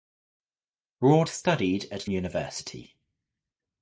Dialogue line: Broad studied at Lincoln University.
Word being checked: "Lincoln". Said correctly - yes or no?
no